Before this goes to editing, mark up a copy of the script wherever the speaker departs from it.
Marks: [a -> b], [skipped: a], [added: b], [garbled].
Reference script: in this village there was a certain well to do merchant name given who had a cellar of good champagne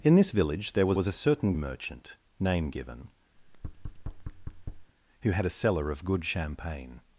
in this village there was [added: was] a certain [skipped: well to do] merchant name given who had a cellar of good champagne